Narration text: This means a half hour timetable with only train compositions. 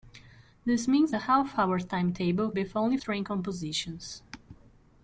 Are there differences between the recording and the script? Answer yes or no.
no